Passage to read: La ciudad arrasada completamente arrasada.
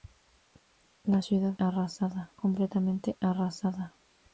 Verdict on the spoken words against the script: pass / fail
pass